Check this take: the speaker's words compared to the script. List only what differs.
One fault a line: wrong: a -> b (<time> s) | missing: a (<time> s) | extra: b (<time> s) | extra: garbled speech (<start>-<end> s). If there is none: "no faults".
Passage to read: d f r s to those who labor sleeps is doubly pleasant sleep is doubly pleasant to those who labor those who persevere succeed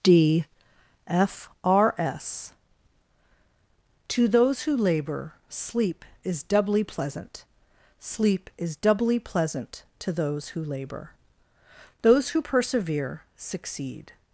wrong: sleeps -> sleep (5.5 s)